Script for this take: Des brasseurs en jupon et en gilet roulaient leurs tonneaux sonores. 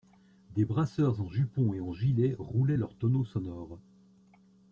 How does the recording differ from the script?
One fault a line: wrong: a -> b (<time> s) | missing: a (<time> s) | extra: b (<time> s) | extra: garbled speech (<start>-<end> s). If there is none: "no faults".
no faults